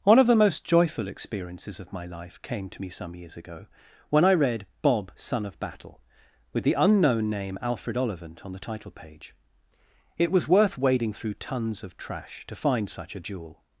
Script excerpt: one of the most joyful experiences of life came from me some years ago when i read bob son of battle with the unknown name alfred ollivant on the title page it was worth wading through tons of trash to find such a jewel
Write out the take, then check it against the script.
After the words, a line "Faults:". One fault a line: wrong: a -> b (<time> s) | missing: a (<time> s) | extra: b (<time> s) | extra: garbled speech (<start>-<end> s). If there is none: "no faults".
one of the most joyful experiences of my life came to me some years ago when i read bob son of battle with the unknown name alfred ollivant on the title page it was worth wading through tons of trash to find such a jewel
Faults:
extra: my (1.9 s)
wrong: from -> to (2.7 s)